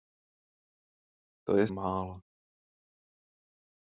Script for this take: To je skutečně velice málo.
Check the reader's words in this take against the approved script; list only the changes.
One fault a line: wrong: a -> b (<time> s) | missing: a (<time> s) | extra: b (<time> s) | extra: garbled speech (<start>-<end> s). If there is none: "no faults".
missing: skutečně velice (1.7 s)